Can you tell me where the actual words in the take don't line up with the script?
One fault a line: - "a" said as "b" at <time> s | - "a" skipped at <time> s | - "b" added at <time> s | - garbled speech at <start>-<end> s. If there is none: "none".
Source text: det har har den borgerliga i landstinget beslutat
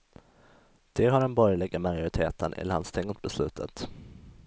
- "har" skipped at 1.2 s
- "majoriteten" added at 1.8 s